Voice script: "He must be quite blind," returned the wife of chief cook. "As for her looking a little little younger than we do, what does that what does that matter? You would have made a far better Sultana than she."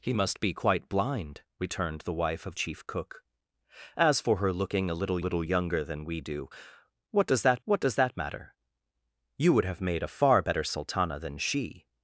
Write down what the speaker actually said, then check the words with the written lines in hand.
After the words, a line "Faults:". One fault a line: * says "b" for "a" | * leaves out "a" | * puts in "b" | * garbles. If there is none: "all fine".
"He must be quite blind," returned the wife of chief cook. "As for her looking a little little younger than we do, what does that what does that matter? You would have made a far better Sultana than she."
Faults:
all fine